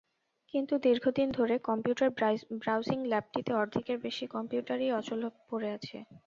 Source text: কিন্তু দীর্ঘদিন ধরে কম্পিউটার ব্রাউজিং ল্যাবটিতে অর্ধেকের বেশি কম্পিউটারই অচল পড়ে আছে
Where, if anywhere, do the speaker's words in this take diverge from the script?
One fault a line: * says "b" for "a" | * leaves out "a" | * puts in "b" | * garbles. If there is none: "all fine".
all fine